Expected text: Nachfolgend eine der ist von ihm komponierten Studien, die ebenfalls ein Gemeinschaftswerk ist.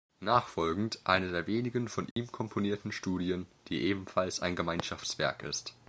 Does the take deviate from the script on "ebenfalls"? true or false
false